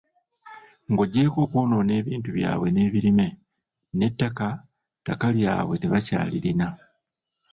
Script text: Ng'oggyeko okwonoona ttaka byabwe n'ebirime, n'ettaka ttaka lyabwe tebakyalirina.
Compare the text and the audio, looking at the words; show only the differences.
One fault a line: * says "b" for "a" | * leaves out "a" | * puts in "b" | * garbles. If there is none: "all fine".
* says "ebintu" for "ttaka"